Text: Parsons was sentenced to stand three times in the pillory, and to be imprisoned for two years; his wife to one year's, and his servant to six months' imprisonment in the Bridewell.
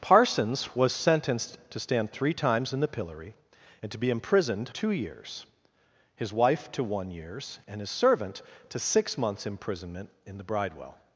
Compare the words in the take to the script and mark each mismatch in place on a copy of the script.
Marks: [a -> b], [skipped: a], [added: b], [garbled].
Parsons was sentenced to stand three times in the pillory, and to be imprisoned [skipped: for] two years; his wife to one year's, and his servant to six months' imprisonment in the Bridewell.